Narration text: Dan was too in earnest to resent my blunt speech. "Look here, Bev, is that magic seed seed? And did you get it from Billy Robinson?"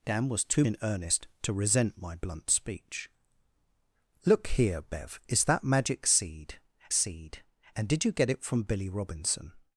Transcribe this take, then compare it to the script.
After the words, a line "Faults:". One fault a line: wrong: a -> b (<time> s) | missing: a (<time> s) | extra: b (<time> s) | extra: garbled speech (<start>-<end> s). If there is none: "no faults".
Dan was too in earnest to resent my blunt speech. "Look here, Bev, is that magic seed seed? And did you get it from Billy Robinson?"
Faults:
no faults